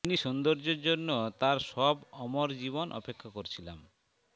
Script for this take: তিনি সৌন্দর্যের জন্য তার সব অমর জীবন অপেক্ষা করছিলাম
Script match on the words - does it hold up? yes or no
yes